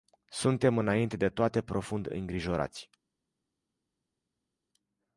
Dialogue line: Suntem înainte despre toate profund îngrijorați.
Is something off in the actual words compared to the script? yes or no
yes